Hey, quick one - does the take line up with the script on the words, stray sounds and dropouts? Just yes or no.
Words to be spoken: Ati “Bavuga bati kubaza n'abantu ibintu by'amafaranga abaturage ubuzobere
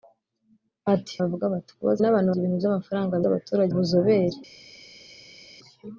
yes